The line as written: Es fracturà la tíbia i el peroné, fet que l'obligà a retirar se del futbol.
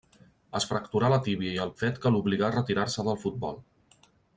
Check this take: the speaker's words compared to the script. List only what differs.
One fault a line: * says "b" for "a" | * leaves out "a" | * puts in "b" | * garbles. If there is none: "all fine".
* leaves out "peroné"